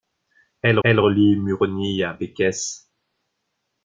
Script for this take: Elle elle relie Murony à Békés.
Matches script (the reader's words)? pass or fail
pass